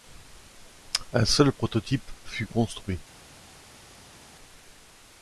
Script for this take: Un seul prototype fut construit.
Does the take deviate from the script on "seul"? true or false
false